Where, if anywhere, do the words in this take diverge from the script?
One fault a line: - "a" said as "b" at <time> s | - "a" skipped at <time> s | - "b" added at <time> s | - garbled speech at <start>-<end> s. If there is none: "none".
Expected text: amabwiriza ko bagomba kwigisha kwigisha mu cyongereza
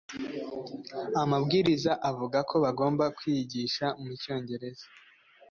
- "avuga" added at 2.1 s
- "kwigisha" skipped at 3.8 s